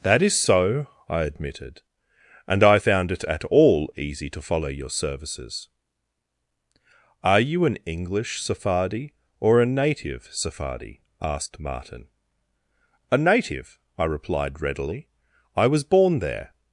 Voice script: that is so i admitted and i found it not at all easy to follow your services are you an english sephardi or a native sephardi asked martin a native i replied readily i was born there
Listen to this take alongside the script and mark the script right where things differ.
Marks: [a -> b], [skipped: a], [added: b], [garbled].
that is so i admitted and i found it [skipped: not] at all easy to follow your services are you an english sephardi or a native sephardi asked martin a native i replied readily i was born there